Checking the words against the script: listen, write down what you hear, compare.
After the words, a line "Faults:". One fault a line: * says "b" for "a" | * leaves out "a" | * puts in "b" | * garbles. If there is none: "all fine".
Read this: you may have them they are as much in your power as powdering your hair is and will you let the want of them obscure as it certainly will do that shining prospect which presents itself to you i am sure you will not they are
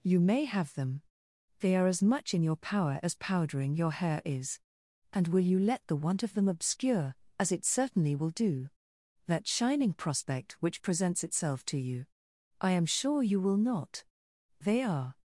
you may have them they are as much in your power as powdering your hair is and will you let the want of them obscure as it certainly will do that shining prospect which presents itself to you i am sure you will not they are
Faults:
all fine